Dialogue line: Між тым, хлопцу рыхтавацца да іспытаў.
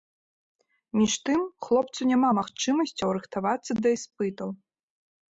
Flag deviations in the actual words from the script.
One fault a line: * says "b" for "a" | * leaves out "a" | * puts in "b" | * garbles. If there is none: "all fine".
* puts in "няма магчымасцяў"